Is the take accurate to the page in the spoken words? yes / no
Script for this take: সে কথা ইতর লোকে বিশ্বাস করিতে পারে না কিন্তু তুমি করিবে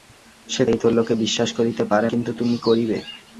no